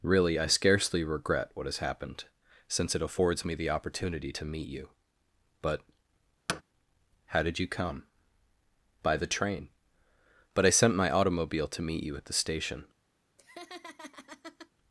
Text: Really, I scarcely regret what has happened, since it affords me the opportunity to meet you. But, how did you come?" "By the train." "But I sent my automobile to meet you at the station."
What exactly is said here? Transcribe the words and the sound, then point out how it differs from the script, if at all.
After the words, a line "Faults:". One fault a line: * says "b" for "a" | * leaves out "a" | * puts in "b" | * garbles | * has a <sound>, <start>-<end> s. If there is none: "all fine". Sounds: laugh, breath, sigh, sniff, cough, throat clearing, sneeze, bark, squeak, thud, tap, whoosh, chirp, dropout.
Really, I scarcely regret what has happened, since it affords me the opportunity to meet you. But, how did you come?" "By the train." "But I sent my automobile to meet you at the station."
Faults:
* has a thud, 6.5-6.6 s
* has a laugh, 13.4-14.7 s